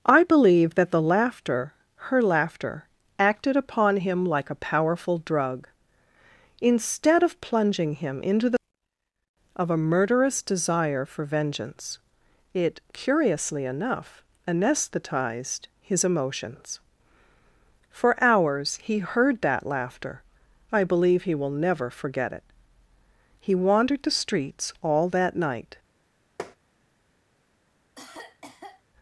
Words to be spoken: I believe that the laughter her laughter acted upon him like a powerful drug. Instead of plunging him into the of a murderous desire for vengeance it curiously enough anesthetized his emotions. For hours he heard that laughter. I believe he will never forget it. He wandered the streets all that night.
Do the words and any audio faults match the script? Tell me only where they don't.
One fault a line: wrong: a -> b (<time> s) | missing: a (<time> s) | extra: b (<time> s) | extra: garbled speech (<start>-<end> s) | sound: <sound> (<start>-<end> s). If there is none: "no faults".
sound: tap (26.4-26.6 s)
sound: cough (28.0-28.8 s)